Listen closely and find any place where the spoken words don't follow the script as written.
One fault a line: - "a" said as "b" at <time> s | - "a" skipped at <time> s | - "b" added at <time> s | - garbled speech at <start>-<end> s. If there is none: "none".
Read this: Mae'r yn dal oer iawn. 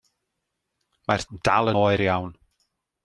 none